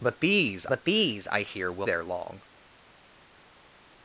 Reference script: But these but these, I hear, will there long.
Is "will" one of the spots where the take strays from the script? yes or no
no